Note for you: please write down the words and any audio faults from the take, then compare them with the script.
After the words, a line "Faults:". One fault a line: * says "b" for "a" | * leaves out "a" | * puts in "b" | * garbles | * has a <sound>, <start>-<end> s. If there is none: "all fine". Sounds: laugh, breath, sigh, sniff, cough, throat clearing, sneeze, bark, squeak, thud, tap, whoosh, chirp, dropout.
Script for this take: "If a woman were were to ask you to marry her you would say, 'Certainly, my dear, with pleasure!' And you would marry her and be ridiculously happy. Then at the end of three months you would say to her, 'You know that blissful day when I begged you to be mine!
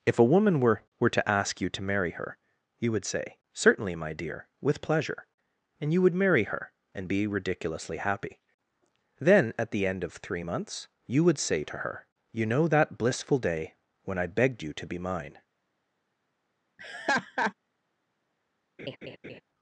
"If a woman were were to ask you to marry her you would say, 'Certainly, my dear, with pleasure!' And you would marry her and be ridiculously happy. Then at the end of three months you would say to her, 'You know that blissful day when I begged you to be mine!
Faults:
* has a laugh, 16.8-17.5 s
* has a laugh, 18.8-19.4 s